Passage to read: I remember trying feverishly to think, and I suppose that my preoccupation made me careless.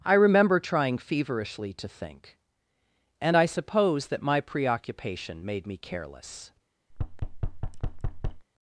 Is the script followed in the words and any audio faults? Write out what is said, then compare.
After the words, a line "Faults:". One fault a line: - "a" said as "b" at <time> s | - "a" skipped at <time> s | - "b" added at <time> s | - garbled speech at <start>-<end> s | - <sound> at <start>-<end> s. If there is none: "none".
I remember trying feverishly to think, and I suppose that my preoccupation made me careless.
Faults:
- thud at 6.9-8.5 s